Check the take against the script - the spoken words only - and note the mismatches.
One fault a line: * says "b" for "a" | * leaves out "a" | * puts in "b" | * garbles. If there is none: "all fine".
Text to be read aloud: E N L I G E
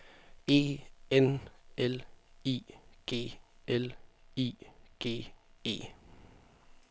* puts in "L I G"